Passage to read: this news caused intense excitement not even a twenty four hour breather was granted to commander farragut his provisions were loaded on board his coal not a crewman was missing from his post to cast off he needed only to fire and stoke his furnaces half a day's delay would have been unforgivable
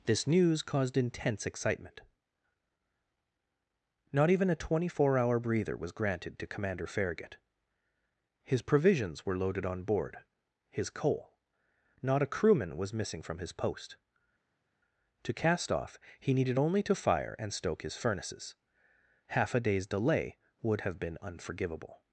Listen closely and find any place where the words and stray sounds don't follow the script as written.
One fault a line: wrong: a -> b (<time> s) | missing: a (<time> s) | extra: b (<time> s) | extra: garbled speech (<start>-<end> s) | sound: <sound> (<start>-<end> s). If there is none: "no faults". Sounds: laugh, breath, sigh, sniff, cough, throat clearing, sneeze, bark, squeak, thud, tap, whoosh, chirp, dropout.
no faults